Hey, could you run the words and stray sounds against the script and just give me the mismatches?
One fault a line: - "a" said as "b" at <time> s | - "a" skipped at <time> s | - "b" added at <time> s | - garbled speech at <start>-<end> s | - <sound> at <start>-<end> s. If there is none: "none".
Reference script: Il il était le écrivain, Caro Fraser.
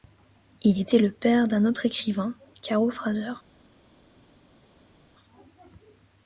- "il" skipped at 0.8 s
- "père d'un autre" added at 1.1 s